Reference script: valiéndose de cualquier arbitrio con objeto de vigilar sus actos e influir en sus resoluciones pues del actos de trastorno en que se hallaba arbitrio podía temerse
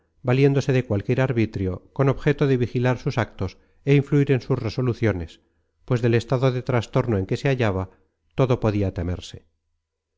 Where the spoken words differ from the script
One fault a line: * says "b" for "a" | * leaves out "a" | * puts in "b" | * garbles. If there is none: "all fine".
* says "estado" for "actos"
* says "todo" for "arbitrio"